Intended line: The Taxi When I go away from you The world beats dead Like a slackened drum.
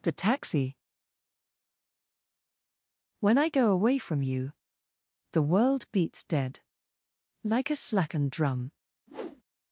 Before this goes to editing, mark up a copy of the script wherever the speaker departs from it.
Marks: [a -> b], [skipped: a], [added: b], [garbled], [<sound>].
The Taxi When I go away from you The world beats dead Like a slackened drum. [whoosh]